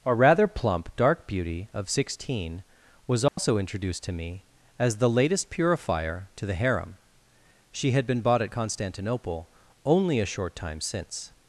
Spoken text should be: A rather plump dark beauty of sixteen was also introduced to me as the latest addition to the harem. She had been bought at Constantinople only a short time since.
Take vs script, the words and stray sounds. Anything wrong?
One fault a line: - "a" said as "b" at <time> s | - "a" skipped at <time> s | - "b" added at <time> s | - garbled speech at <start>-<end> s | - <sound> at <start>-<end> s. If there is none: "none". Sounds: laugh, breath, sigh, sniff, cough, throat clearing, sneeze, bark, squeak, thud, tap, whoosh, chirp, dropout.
- dropout at 3.3-3.4 s
- "addition" said as "purifier" at 5.5 s